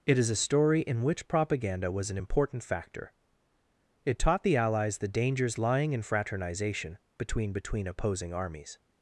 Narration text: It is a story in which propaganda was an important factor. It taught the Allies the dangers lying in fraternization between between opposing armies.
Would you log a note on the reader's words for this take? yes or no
no